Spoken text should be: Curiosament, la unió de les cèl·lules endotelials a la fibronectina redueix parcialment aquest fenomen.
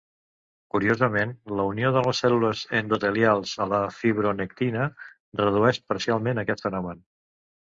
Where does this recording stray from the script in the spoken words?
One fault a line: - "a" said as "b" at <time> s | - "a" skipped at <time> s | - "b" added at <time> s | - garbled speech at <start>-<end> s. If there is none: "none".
none